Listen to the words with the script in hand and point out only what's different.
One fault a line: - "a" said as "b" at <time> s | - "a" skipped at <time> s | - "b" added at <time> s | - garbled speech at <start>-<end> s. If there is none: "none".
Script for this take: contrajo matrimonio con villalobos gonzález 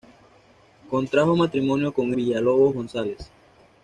none